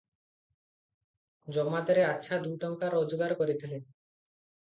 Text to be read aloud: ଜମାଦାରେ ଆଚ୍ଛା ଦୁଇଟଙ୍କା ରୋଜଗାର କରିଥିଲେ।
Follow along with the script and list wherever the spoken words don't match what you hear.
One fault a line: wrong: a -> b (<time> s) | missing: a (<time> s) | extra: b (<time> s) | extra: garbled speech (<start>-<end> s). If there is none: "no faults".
no faults